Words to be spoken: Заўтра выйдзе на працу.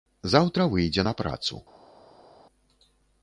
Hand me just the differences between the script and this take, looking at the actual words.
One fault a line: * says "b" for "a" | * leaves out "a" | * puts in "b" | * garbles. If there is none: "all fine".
all fine